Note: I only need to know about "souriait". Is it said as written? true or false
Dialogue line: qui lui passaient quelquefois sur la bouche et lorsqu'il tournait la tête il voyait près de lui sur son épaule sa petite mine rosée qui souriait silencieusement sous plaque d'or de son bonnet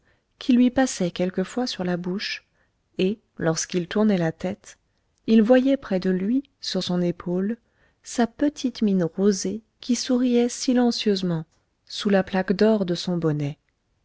true